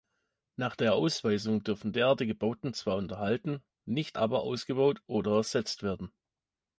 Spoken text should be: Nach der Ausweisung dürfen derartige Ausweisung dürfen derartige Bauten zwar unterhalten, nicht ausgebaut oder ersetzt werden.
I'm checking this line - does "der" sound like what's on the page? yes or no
yes